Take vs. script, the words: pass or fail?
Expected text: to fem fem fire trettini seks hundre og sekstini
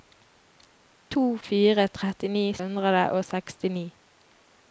fail